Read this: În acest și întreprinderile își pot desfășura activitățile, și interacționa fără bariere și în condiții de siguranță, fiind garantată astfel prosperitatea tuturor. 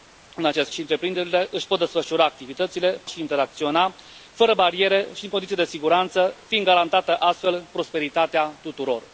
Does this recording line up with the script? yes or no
yes